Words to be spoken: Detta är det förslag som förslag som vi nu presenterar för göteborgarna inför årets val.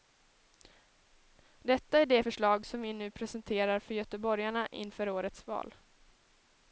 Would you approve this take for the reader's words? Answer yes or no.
no